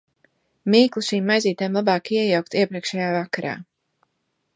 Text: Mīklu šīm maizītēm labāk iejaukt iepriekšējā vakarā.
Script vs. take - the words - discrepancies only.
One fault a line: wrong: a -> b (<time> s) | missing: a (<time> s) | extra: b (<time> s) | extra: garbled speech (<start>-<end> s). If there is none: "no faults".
no faults